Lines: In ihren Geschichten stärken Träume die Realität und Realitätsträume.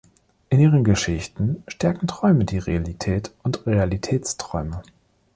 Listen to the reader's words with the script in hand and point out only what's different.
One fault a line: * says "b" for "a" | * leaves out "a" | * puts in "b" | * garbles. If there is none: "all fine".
all fine